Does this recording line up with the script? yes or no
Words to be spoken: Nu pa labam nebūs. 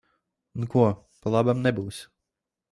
no